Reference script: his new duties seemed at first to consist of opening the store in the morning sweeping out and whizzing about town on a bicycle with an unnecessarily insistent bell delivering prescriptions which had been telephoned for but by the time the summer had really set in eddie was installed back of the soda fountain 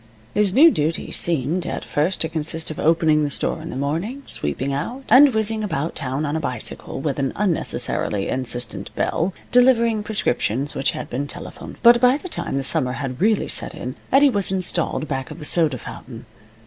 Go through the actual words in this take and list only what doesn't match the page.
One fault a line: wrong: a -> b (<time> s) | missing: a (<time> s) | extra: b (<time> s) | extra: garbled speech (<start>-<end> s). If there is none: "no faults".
missing: for (11.8 s)